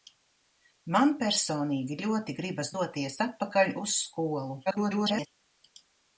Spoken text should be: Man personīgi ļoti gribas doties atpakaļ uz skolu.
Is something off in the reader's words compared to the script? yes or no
yes